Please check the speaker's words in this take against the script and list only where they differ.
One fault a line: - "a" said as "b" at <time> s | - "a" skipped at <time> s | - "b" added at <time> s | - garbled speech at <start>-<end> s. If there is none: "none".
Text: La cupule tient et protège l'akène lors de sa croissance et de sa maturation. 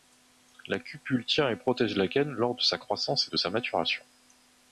none